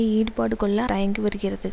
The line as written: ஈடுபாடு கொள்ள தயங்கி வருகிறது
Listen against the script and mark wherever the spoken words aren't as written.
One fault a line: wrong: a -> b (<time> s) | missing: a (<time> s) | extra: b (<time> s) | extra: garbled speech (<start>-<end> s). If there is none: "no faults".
no faults